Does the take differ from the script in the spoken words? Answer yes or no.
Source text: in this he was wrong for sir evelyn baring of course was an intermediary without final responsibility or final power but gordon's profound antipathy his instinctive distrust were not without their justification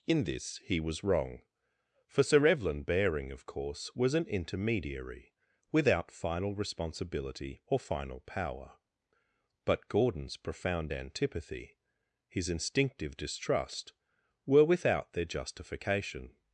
yes